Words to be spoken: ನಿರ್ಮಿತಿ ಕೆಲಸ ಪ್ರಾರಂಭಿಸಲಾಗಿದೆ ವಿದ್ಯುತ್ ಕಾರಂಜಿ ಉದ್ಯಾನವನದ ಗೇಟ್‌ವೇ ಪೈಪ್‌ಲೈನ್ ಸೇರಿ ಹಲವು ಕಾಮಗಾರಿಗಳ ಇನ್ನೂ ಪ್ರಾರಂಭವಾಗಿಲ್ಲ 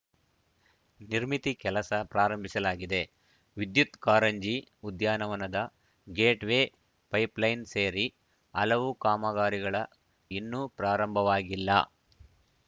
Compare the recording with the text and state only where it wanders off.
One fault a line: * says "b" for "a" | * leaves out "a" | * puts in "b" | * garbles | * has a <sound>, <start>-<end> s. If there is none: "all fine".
all fine